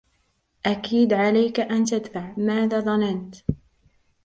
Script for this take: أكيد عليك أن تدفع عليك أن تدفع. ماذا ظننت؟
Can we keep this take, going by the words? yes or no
no